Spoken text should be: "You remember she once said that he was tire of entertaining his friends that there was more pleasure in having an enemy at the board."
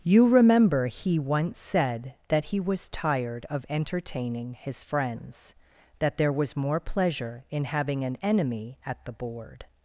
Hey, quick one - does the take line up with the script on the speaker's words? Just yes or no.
no